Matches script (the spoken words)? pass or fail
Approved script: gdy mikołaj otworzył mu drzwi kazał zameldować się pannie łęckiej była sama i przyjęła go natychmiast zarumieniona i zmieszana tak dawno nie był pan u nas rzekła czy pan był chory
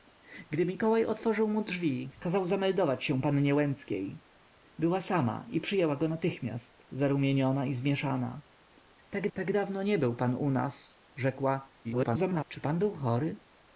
fail